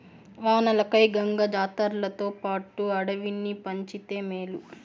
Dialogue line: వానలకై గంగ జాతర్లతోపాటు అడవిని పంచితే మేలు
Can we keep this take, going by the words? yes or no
yes